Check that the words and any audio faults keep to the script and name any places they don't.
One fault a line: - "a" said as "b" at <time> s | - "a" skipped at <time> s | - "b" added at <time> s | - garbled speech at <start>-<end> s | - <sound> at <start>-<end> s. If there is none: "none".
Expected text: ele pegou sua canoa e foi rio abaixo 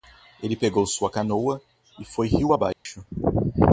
- dropout at 2.7-2.9 s